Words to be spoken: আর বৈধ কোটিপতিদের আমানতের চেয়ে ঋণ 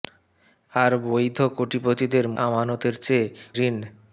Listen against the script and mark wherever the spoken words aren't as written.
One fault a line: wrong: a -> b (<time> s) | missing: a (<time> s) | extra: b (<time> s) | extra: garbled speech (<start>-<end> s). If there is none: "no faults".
no faults